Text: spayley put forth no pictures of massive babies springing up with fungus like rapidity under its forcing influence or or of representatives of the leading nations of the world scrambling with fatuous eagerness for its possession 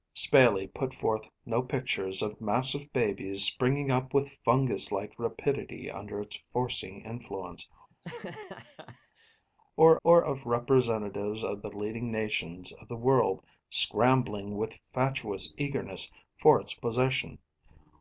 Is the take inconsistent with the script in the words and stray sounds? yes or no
yes